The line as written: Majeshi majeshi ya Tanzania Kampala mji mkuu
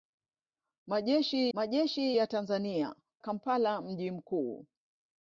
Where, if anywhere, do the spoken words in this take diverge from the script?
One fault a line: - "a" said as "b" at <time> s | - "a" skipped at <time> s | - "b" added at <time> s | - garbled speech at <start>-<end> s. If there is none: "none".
none